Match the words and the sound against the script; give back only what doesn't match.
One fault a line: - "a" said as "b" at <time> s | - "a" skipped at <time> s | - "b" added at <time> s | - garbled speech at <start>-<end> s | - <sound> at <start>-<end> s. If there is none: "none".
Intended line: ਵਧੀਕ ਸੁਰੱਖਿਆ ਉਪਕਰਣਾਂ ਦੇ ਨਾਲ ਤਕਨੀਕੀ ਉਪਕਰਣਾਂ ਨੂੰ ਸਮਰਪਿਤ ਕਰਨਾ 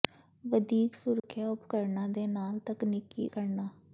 - dropout at 1.2-1.2 s
- "ਉਪਕਰਣਾਂ ਨੂੰ ਸਮਰਪਿਤ" skipped at 3.3 s